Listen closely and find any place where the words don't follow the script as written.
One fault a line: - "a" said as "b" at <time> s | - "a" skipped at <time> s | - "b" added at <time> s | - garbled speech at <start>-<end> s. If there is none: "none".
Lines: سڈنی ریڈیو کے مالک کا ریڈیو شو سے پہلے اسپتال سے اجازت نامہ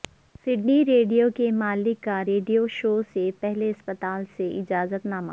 none